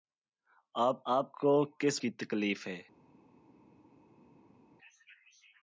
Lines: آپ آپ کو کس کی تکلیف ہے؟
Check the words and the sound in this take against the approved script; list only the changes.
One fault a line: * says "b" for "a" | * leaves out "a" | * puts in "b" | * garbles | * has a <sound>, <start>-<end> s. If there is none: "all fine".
all fine